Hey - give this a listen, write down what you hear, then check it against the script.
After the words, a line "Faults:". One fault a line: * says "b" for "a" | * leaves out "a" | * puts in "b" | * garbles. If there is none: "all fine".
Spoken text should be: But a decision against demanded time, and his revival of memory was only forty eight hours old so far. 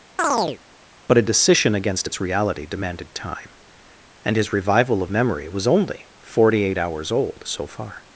But a decision against its reality demanded time, and his revival of memory was only forty eight hours old so far.
Faults:
* puts in "its reality"